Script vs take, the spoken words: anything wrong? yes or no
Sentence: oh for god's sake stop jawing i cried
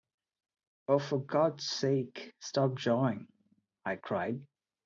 no